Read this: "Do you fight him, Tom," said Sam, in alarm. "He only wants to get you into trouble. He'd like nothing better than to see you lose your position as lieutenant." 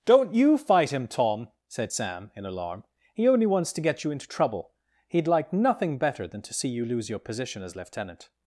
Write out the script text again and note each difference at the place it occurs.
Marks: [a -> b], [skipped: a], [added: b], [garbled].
["Do -> Don't] you fight him, Tom," said Sam, in alarm. "He only wants to get you into trouble. He'd like nothing better than to see you lose your position as lieutenant."